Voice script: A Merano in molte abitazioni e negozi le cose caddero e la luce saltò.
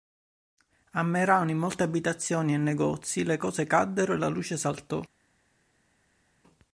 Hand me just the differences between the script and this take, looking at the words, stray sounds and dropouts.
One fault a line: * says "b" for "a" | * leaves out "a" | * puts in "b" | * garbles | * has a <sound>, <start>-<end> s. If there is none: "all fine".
all fine